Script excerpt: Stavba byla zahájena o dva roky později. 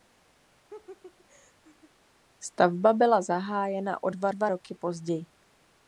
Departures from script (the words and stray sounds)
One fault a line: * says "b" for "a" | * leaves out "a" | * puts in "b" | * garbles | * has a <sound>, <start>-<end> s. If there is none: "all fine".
* has a laugh, 0.7-1.9 s
* puts in "dva"